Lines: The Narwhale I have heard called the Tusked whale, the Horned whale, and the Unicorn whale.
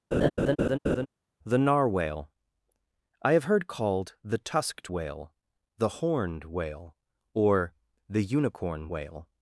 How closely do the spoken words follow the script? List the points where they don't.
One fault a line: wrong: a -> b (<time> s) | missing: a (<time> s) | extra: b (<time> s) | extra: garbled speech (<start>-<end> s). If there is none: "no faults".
wrong: and -> or (7.3 s)